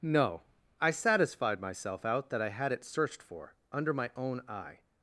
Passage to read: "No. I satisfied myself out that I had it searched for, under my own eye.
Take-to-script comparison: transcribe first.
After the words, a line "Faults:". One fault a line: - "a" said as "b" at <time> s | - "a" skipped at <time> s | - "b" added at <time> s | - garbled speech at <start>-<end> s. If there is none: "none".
"No. I satisfied myself out that I had it searched for, under my own eye.
Faults:
none